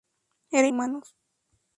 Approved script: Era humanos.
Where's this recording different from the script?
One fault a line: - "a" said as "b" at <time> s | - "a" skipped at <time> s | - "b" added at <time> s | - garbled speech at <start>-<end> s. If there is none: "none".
none